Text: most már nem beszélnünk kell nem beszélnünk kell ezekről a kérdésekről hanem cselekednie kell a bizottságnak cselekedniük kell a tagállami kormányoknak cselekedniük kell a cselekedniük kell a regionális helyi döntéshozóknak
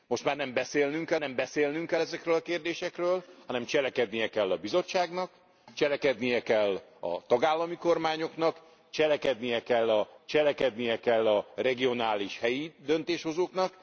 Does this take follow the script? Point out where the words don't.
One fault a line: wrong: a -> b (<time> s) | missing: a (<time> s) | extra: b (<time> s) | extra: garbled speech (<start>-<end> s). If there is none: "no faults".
no faults